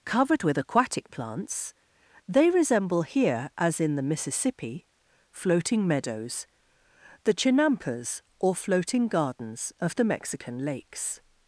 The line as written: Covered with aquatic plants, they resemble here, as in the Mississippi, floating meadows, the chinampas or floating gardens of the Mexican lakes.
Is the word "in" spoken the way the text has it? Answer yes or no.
yes